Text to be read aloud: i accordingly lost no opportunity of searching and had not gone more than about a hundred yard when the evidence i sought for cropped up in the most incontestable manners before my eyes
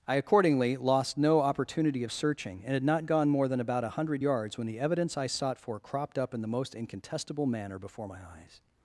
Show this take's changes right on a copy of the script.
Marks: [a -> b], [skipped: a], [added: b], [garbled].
i accordingly lost no opportunity of searching and had not gone more than about a hundred [yard -> yards] when the evidence i sought for cropped up in the most incontestable [manners -> manner] before my eyes